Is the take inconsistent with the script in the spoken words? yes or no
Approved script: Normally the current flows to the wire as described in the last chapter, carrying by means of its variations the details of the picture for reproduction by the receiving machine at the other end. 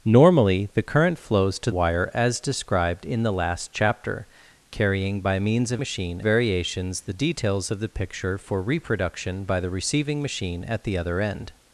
yes